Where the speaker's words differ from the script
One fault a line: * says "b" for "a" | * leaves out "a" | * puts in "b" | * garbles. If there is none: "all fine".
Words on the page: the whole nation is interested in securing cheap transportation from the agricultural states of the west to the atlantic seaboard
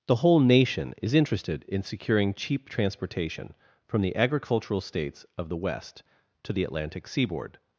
all fine